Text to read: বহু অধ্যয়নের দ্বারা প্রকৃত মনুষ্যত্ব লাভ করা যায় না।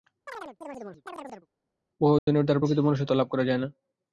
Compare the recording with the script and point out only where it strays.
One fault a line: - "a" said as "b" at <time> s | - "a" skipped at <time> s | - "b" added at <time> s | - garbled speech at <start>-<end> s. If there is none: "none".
none